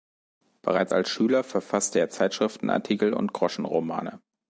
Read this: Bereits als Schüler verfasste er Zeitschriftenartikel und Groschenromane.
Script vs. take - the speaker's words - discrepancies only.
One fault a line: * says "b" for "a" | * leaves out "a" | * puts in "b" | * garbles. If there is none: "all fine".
all fine